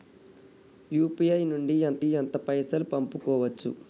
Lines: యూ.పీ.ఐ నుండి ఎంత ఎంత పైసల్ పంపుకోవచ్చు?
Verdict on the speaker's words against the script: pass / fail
pass